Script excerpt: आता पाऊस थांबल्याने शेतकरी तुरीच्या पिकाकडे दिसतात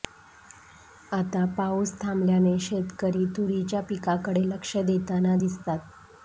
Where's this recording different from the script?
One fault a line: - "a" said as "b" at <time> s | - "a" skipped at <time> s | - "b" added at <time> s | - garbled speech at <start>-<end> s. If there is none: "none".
- "लक्ष देताना" added at 4.5 s